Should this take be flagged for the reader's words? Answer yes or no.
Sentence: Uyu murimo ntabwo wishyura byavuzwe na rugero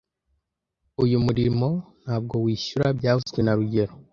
no